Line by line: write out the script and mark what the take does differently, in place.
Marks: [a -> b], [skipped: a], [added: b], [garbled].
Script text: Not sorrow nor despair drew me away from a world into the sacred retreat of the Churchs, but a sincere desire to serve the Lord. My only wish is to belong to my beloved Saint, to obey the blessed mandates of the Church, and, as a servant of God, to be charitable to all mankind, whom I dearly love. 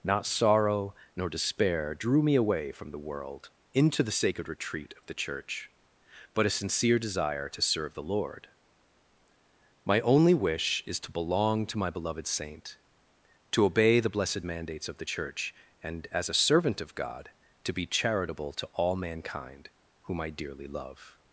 Not sorrow nor despair drew me away from [a -> the] world into the sacred retreat of the [Churchs, -> Church] but a sincere desire to serve the Lord. My only wish is to belong to my beloved Saint, to obey the blessed mandates of the Church, and, as a servant of God, to be charitable to all mankind, whom I dearly love.